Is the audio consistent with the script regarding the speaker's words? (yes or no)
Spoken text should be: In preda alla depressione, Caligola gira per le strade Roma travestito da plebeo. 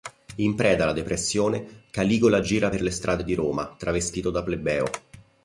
no